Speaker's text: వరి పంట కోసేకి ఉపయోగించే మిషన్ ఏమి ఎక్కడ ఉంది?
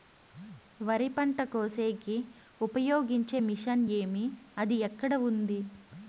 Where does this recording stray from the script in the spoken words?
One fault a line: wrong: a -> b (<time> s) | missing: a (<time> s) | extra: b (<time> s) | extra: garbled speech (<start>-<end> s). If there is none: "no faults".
extra: అది (4.6 s)